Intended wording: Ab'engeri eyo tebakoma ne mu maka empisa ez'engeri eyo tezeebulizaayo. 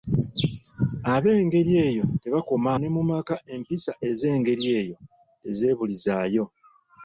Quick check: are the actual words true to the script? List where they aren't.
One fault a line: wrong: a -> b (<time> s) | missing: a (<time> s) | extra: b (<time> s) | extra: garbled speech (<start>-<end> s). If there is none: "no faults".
no faults